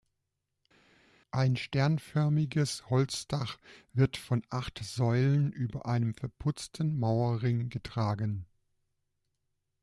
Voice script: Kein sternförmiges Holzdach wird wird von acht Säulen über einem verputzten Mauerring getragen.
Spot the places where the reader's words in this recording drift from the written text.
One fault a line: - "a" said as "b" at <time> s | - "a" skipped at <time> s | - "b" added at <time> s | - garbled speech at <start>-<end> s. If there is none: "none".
- "Kein" said as "Ein" at 1.3 s
- "wird" skipped at 4.2 s